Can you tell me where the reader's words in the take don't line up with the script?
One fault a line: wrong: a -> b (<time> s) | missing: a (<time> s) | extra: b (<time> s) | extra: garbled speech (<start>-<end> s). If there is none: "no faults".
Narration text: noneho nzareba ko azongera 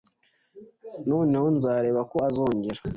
no faults